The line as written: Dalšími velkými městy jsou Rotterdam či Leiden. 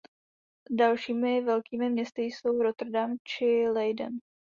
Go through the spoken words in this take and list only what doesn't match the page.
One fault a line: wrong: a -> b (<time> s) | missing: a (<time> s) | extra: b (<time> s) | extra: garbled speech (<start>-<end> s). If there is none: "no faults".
no faults